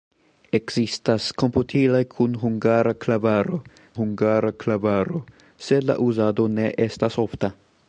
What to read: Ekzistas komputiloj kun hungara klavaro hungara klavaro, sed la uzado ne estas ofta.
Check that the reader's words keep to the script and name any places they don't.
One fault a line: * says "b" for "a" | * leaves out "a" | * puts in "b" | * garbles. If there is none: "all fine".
all fine